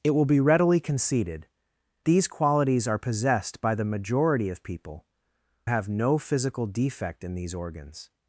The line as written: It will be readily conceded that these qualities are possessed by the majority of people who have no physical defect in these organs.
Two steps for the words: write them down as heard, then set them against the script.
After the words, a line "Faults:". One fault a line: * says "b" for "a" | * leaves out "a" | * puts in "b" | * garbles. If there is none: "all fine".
It will be readily conceded these qualities are possessed by the majority of people have no physical defect in these organs.
Faults:
* leaves out "that"
* leaves out "who"